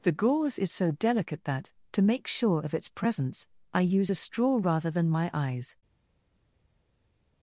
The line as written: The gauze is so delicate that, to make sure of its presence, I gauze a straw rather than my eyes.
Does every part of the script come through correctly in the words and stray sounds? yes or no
no